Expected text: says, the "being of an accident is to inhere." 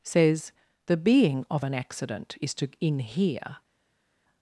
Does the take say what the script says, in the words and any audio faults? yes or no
yes